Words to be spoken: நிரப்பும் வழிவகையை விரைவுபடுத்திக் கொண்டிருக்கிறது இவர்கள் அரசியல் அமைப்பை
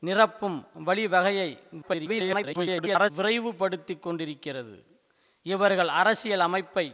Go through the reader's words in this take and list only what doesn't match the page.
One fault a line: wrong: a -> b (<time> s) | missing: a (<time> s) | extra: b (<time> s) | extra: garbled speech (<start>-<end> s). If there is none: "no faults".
extra: garbled speech (1.8-3.1 s)